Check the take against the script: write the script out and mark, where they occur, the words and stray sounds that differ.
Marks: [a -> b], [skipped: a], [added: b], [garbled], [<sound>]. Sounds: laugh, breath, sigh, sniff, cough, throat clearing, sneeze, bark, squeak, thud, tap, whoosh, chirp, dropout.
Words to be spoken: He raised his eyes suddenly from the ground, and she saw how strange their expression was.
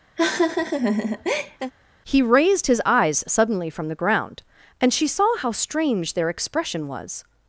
[laugh] He raised his eyes suddenly from the ground, and she saw how strange their expression was.